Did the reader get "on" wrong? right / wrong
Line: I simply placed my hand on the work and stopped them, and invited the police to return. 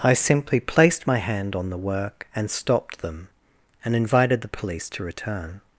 right